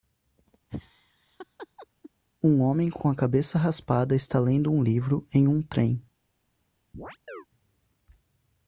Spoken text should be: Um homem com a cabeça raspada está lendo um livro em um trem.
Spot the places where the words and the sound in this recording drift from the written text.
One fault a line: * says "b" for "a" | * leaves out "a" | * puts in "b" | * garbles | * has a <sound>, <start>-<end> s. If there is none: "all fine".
* has a laugh, 0.7-2.1 s
* puts in "com"
* has a chirp, 6.9-7.5 s